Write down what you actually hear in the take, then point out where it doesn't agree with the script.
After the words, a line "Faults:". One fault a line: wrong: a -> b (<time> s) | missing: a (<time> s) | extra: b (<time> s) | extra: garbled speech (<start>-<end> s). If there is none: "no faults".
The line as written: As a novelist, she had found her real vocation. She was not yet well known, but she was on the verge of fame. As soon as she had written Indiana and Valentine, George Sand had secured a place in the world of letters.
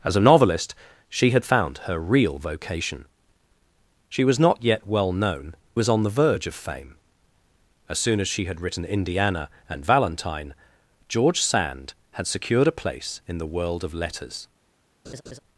As a novelist, she had found her real vocation. She was not yet well known, was on the verge of fame. As soon as she had written Indiana and Valentine, George Sand had secured a place in the world of letters.
Faults:
missing: but she (5.5 s)